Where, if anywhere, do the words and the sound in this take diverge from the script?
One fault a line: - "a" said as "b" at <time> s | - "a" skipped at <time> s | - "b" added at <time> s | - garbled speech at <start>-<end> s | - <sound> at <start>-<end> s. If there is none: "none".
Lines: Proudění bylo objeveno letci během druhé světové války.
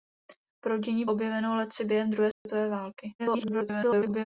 - "bylo" skipped at 1.1 s
- dropout at 2.3-2.5 s
- garbled speech at 3.2-4.2 s